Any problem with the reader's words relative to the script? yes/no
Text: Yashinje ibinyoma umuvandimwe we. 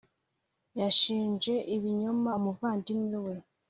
no